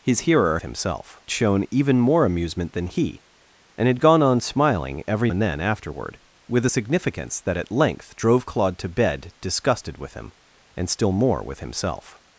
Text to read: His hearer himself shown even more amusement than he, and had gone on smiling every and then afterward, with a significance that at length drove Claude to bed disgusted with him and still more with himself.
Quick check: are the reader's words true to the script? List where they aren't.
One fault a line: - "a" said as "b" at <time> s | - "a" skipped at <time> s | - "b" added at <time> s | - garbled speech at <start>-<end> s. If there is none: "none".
none